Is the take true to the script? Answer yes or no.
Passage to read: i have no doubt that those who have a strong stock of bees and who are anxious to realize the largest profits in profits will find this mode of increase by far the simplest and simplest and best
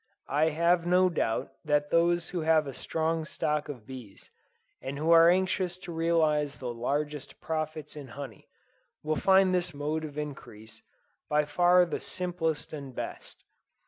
no